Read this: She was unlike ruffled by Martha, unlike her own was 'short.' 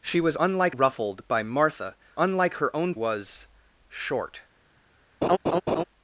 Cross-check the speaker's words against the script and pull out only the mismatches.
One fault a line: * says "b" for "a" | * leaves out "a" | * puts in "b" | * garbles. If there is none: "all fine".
all fine